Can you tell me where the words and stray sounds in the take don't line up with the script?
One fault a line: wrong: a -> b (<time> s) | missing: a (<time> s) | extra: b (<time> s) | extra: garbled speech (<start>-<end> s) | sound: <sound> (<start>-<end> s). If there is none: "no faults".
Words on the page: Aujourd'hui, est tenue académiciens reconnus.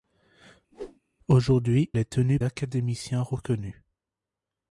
sound: whoosh (0.7-1.0 s)